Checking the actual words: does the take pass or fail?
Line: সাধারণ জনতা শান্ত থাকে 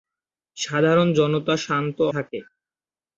pass